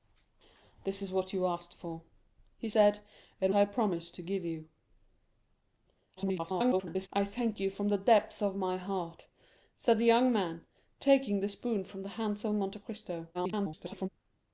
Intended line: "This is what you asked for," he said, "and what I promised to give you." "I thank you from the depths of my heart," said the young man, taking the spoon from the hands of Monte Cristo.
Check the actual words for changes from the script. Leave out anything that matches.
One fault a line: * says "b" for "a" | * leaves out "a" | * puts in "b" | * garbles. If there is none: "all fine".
* leaves out "what"
* garbles
* garbles